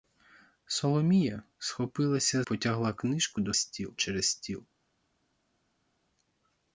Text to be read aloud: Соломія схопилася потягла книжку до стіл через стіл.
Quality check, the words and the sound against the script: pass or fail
pass